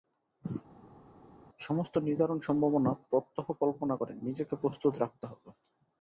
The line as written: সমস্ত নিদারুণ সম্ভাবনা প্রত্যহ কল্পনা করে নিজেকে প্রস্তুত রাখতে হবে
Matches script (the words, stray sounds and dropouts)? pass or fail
pass